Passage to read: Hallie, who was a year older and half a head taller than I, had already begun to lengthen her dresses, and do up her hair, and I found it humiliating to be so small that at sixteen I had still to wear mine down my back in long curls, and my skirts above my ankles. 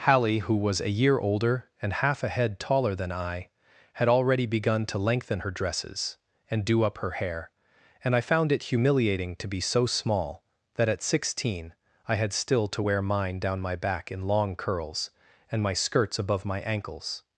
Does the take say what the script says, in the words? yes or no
yes